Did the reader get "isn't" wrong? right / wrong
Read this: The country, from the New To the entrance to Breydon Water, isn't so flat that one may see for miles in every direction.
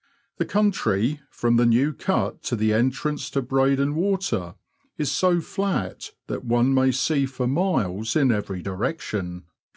wrong